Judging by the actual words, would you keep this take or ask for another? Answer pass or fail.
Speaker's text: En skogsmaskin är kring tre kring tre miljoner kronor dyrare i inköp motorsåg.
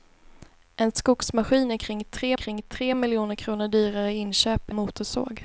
pass